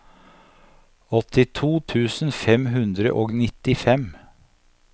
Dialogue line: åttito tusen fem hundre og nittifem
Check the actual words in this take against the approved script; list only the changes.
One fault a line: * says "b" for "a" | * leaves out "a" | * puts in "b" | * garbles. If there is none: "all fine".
all fine